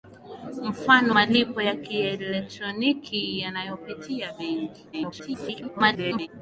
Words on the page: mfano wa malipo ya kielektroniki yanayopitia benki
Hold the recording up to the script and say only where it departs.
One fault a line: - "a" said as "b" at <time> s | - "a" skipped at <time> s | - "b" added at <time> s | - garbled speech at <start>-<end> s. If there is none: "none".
- "wa" skipped at 1.1 s
- garbled speech at 4.9-6.3 s